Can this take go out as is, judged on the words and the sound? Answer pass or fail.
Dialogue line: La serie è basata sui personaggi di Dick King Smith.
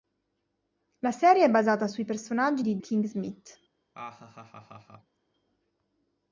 fail